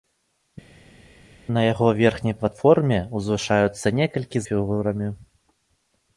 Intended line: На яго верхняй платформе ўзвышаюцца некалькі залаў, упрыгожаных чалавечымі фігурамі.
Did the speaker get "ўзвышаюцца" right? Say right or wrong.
right